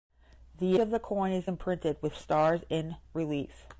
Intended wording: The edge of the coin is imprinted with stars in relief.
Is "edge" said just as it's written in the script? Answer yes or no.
no